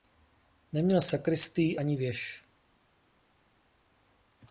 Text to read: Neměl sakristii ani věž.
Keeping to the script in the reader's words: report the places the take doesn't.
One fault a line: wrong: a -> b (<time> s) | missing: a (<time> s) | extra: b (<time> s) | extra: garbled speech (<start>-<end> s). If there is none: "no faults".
no faults